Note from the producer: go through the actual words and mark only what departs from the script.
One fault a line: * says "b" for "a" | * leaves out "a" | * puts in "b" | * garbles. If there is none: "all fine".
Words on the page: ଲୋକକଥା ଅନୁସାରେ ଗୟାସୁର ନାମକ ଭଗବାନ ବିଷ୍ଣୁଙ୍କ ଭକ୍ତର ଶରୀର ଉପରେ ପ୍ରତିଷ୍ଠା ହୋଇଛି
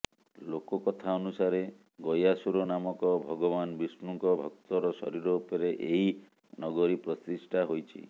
* puts in "ଏହି ନଗରୀ"